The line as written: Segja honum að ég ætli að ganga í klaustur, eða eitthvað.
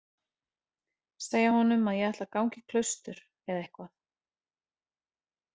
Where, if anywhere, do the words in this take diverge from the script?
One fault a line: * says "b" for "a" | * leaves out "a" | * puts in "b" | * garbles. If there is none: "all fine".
all fine